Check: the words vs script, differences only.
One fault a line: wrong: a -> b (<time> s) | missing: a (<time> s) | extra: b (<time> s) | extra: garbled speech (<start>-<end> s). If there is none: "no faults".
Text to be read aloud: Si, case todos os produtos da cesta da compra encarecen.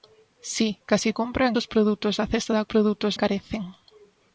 wrong: todos -> compra (1.2 s)
wrong: compra -> produtos (2.7 s)